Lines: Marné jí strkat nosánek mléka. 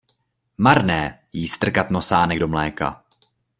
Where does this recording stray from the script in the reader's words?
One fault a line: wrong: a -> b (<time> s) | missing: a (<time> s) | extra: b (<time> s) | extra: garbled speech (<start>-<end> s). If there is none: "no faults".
extra: do (2.4 s)